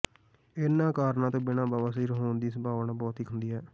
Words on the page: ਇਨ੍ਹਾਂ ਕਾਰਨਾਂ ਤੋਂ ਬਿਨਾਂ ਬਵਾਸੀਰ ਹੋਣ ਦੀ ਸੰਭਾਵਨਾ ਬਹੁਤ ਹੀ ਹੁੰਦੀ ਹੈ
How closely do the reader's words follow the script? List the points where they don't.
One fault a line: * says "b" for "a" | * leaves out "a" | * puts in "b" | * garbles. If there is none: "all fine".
all fine